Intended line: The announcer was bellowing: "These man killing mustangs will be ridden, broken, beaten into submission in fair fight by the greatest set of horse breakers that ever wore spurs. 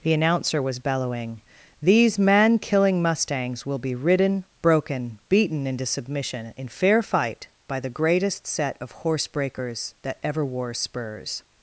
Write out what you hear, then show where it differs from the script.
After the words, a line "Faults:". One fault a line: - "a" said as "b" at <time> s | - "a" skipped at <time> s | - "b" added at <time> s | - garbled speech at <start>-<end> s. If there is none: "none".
The announcer was bellowing: "These man killing mustangs will be ridden, broken, beaten into submission in fair fight by the greatest set of horse breakers that ever wore spurs.
Faults:
none